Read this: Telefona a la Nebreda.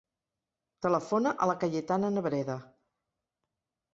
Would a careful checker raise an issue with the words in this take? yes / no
yes